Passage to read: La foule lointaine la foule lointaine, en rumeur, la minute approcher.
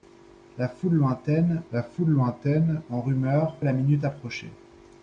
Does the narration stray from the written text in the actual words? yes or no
no